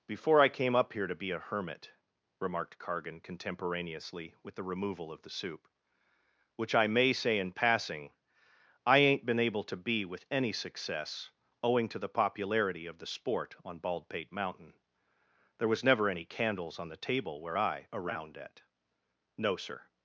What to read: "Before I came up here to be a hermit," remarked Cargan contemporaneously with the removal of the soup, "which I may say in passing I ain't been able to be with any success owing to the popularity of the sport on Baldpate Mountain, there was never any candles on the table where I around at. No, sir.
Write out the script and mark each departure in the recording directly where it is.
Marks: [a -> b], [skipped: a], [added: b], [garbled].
"Before I came up here to be a hermit," remarked Cargan contemporaneously with the removal of the soup, "which I may say in passing I ain't been able to be with any success owing to the popularity of the sport on Baldpate Mountain, there was never any candles on the table where I around at. No, sir.